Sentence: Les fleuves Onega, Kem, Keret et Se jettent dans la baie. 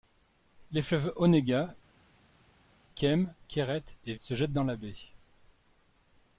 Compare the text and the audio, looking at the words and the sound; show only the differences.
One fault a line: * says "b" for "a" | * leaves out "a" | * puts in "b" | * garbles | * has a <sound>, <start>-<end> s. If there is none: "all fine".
all fine